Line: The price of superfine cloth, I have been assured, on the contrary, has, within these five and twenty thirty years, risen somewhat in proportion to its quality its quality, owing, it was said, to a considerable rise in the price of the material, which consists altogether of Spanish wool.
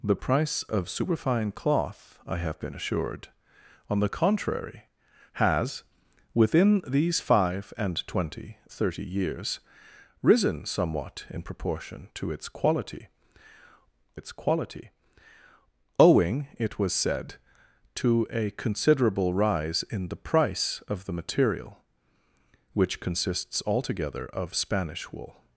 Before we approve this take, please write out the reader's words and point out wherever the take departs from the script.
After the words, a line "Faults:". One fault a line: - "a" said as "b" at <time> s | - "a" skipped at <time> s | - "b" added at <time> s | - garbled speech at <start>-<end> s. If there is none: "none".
The price of superfine cloth, I have been assured, on the contrary, has, within these five and twenty thirty years, risen somewhat in proportion to its quality its quality, owing, it was said, to a considerable rise in the price of the material, which consists altogether of Spanish wool.
Faults:
none